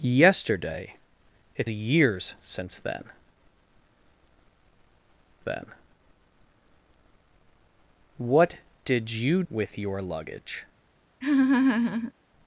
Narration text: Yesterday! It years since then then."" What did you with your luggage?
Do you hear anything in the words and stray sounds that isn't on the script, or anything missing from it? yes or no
yes